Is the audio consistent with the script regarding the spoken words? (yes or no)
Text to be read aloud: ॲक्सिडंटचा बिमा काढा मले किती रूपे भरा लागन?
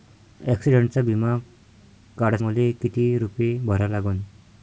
yes